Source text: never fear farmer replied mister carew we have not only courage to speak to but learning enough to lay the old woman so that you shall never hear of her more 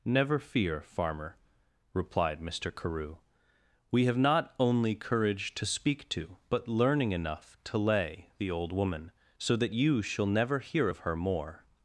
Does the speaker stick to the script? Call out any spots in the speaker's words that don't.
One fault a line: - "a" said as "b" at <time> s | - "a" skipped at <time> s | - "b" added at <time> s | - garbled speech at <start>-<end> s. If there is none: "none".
none